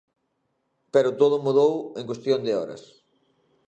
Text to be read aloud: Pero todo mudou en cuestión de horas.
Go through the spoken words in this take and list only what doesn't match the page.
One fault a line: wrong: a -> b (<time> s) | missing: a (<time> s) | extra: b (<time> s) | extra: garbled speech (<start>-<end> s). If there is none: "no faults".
no faults